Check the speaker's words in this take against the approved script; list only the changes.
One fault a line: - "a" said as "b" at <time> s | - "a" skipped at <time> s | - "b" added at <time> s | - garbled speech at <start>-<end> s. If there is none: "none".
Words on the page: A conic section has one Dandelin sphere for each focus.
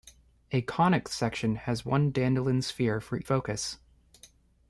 - "each" skipped at 3.2 s